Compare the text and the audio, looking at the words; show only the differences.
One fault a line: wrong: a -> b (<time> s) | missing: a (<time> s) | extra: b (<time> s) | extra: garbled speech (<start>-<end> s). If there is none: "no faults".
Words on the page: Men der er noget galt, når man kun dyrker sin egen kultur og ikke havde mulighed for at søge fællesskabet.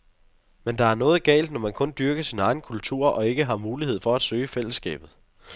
wrong: havde -> har (3.5 s)